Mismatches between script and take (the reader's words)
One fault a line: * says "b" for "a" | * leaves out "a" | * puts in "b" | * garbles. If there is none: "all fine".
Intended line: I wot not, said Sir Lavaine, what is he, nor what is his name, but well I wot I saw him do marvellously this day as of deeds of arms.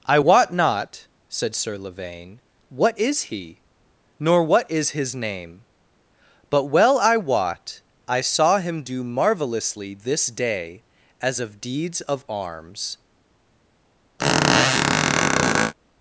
all fine